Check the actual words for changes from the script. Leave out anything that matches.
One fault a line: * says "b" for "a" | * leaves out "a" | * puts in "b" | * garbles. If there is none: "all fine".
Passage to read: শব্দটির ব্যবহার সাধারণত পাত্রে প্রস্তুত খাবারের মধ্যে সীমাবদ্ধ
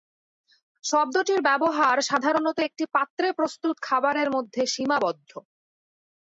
* puts in "একটি"